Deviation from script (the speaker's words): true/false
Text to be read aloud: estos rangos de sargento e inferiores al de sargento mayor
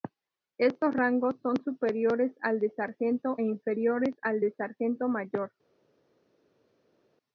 true